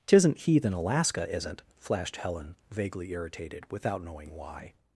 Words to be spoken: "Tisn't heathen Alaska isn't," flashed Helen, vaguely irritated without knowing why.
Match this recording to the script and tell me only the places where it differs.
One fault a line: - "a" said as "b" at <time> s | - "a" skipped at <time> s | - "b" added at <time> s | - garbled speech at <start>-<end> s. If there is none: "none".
none